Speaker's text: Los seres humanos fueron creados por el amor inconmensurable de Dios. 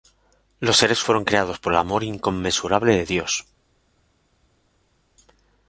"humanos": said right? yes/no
no